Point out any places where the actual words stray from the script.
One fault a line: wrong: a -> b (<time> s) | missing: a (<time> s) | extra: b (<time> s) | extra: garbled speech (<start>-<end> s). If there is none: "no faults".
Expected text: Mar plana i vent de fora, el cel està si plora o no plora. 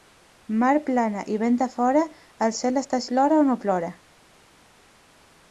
missing: si (3.0 s)